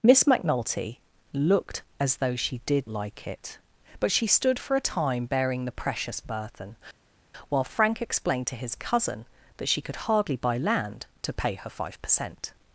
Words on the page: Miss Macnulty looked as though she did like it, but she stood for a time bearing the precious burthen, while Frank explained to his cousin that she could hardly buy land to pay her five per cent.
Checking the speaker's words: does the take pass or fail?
pass